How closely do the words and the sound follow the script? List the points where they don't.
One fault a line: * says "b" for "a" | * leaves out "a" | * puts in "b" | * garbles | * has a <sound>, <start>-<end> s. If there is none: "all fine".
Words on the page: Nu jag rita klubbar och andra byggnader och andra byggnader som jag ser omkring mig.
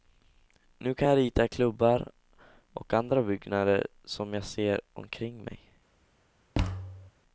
* puts in "kan"
* leaves out "och andra byggnader"
* has a thud, 6.5-7.1 s